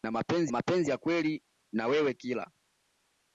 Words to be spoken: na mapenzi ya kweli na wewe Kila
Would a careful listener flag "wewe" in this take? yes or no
no